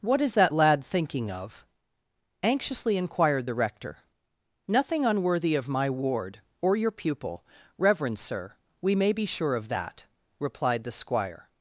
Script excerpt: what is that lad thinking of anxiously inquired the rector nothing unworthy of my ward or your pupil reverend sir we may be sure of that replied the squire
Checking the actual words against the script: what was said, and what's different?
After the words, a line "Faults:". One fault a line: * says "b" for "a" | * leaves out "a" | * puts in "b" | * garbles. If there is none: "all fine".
what is that lad thinking of anxiously inquired the rector nothing unworthy of my ward or your pupil reverend sir we may be sure of that replied the squire
Faults:
all fine